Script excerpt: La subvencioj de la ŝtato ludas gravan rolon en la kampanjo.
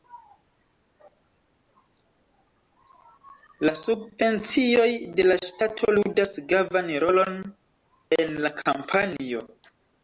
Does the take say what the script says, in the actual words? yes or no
yes